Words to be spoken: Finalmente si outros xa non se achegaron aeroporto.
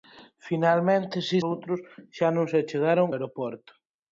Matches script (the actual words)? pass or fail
pass